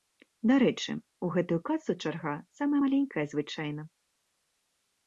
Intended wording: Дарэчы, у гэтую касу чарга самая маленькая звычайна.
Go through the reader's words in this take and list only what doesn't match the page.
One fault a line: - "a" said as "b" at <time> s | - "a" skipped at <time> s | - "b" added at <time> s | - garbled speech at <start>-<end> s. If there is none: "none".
none